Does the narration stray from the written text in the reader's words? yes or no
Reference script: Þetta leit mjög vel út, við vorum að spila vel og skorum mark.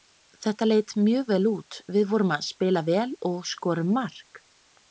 no